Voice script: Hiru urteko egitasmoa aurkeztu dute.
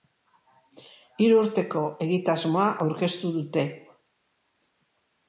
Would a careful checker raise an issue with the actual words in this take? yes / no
no